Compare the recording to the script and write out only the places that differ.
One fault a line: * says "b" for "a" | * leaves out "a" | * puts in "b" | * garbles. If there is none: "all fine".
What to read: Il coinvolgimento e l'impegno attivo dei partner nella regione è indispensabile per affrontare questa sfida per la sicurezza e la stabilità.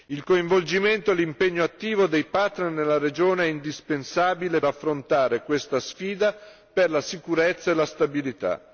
* leaves out "per"